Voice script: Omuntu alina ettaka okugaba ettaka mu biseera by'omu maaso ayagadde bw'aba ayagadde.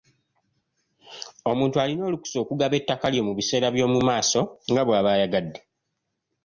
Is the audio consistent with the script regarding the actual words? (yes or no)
no